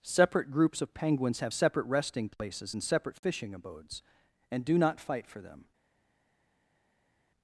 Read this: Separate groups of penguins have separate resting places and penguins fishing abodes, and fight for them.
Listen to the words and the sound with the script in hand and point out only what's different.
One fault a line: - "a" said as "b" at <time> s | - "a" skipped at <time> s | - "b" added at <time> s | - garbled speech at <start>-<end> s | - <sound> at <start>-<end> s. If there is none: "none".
- "penguins" said as "separate" at 2.8 s
- "do not" added at 4.6 s